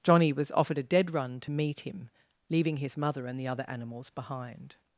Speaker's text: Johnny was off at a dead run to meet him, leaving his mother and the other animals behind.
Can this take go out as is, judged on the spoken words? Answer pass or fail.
fail